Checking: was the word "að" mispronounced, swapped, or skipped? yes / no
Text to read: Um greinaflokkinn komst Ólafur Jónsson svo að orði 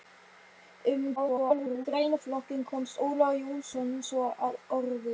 no